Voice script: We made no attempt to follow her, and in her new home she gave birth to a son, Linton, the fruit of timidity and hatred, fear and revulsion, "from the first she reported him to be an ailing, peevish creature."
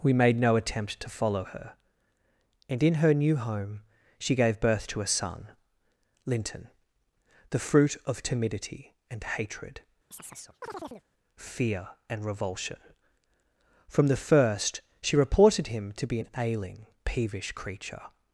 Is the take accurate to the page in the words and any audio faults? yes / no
no